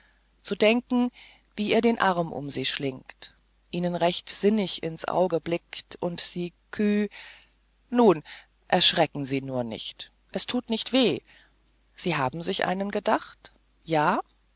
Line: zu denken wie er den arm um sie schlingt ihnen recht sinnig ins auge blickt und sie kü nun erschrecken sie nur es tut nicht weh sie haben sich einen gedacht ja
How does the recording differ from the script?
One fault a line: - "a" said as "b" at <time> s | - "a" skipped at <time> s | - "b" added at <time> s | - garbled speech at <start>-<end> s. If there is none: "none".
- "nicht" added at 9.6 s